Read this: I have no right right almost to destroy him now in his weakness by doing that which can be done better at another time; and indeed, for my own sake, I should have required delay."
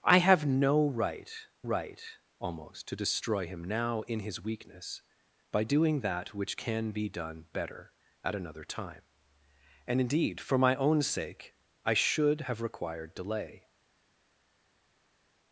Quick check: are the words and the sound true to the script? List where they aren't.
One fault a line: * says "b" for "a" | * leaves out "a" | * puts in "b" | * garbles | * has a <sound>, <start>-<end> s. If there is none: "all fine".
all fine